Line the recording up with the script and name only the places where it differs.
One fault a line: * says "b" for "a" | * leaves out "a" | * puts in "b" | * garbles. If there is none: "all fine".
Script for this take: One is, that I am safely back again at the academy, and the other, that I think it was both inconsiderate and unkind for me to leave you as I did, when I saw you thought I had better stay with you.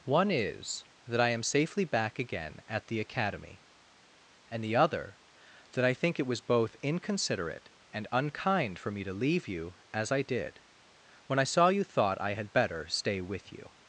all fine